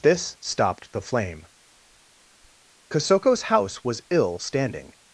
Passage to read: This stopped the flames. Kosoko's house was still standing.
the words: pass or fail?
fail